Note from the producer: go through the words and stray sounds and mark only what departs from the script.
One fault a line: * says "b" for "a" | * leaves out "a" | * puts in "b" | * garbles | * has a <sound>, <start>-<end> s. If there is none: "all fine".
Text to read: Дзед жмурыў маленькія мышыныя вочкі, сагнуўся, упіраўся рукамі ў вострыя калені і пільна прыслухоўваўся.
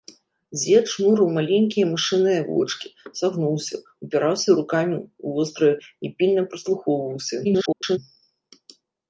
* leaves out "калені"
* garbles